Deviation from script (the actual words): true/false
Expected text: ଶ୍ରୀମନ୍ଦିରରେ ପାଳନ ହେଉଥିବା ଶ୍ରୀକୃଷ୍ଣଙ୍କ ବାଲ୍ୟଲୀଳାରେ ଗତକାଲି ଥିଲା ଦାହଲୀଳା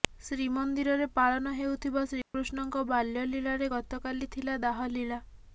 false